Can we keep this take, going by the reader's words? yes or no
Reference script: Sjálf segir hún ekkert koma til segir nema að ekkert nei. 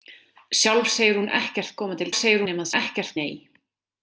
yes